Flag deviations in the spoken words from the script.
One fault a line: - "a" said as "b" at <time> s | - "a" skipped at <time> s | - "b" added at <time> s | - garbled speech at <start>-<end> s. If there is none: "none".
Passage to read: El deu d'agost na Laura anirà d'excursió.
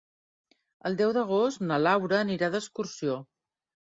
none